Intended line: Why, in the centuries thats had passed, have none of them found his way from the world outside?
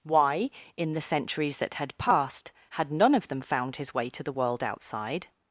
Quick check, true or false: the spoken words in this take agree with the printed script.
false